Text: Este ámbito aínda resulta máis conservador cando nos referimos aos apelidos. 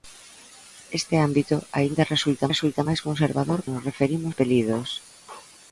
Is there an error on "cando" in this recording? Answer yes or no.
yes